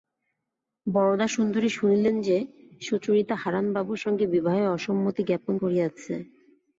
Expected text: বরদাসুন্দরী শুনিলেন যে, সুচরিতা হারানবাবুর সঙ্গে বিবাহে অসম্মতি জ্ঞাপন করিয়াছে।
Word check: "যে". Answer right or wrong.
right